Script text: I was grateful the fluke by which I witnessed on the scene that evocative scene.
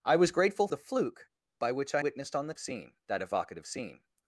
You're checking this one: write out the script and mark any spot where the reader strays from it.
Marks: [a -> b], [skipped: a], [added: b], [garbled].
I was grateful the fluke by which I witnessed on the scene that evocative scene.